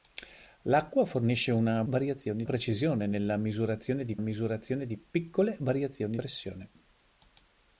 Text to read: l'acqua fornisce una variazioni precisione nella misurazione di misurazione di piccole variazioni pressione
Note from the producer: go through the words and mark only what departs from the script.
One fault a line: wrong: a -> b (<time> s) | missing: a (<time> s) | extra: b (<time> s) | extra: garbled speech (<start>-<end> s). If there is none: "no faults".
no faults